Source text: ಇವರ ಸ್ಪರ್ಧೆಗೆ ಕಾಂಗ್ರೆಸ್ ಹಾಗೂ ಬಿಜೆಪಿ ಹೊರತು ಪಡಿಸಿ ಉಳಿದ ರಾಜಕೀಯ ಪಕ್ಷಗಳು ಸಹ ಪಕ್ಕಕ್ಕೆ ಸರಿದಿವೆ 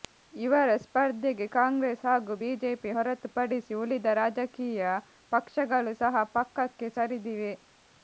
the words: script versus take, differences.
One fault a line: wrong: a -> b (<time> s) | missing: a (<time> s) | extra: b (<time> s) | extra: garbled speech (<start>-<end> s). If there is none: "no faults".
no faults